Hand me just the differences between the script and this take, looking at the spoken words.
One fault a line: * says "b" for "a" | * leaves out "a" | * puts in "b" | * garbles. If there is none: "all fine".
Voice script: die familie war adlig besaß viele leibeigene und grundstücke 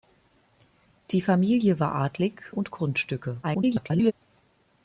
* leaves out "besaß viele leibeigene"
* garbles